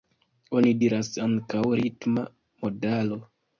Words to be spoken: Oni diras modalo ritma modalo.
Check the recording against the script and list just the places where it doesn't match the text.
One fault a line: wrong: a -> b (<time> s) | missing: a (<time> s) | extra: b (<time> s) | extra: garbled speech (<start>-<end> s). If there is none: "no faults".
wrong: modalo -> ankaŭ (1.3 s)